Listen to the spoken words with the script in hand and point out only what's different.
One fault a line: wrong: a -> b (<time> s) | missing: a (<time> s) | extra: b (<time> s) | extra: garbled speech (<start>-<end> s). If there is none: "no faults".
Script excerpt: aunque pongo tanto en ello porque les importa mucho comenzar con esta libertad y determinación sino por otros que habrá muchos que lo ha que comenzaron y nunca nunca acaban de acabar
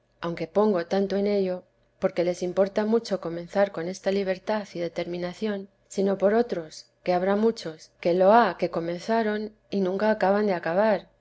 missing: nunca (10.1 s)